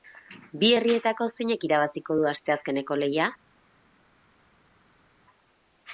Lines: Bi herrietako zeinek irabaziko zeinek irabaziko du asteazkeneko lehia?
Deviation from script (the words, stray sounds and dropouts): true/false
true